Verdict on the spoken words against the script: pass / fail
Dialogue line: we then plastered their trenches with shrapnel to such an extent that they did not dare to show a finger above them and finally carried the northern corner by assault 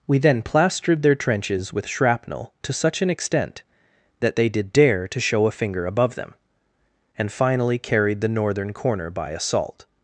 fail